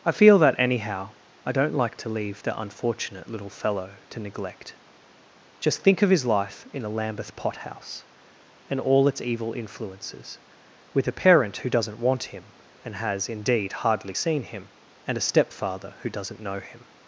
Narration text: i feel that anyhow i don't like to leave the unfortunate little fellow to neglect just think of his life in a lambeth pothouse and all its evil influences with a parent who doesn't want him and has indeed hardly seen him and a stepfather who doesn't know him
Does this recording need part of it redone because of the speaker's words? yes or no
no